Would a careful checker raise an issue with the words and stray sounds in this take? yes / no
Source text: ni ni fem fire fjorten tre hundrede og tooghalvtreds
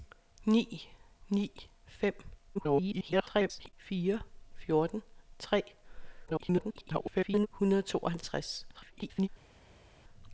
yes